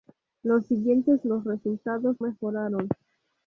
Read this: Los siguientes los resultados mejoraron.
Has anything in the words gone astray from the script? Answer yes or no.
no